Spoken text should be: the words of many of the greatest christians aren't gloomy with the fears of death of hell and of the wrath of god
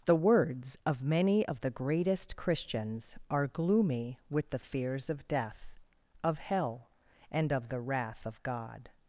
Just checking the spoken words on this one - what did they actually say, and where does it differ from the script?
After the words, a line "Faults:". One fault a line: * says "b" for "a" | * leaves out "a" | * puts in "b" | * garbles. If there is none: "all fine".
the words of many of the greatest christians are gloomy with the fears of death of hell and of the wrath of god
Faults:
* says "are" for "aren't"